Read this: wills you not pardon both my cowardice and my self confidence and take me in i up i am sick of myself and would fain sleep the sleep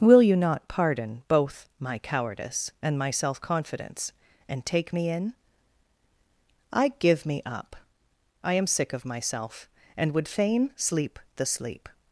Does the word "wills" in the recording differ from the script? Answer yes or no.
yes